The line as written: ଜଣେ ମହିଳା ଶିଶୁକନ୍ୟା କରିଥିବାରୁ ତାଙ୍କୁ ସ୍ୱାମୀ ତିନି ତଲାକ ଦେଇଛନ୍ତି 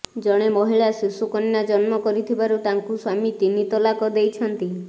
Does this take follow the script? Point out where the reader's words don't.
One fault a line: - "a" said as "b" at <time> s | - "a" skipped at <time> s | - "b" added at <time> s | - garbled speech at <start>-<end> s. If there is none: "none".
- "ଜନ୍ମ" added at 1.7 s